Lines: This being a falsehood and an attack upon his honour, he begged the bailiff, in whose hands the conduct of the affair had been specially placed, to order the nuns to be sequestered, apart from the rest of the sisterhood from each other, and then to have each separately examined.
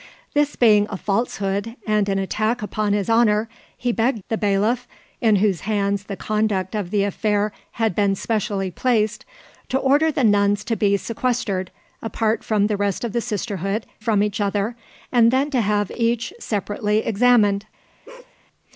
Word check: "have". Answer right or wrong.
right